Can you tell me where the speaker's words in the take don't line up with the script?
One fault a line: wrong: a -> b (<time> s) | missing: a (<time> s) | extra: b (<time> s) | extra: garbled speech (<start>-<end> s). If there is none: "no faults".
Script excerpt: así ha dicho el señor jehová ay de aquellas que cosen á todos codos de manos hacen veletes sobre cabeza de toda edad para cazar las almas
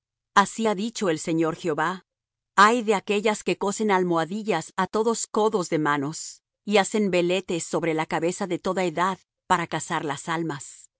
extra: almohadillas (3.9 s)
extra: y (6.6 s)
extra: la (7.9 s)